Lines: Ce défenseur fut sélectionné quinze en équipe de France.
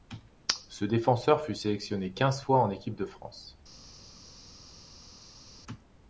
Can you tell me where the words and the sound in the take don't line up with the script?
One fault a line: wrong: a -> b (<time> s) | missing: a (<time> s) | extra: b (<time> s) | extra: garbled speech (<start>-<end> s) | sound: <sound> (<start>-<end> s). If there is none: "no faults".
extra: fois (2.4 s)